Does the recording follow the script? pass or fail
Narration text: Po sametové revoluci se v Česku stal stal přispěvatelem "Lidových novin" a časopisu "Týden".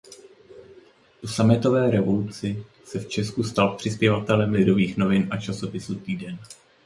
fail